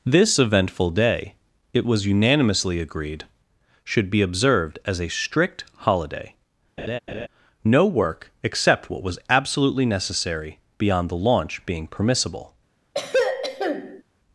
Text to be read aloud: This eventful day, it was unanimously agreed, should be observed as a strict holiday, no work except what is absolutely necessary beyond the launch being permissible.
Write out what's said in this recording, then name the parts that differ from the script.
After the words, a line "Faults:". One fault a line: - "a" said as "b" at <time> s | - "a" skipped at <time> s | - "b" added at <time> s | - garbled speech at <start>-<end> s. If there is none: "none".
This eventful day, it was unanimously agreed, should be observed as a strict holiday, no work except what was absolutely necessary beyond the launch being permissible.
Faults:
- "is" said as "was" at 9.0 s